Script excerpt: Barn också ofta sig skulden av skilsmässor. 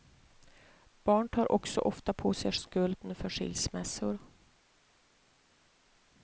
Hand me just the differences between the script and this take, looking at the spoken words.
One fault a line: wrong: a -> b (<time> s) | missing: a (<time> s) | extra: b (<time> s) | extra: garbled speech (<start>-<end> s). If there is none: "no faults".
extra: tar (1.3 s)
extra: på (2.1 s)
wrong: av -> för (3.1 s)